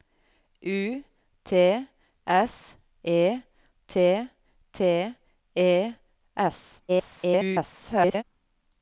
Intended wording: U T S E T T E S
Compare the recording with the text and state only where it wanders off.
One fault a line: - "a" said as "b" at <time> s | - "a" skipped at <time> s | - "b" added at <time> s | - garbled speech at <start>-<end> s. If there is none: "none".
- garbled speech at 6.9-8.2 s